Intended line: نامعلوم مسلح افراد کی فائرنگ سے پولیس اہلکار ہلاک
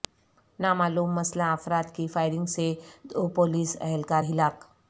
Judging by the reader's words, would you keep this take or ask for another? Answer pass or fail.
fail